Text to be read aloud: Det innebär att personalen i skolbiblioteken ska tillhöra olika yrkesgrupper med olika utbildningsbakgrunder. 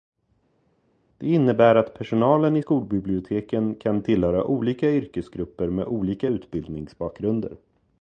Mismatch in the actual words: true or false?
true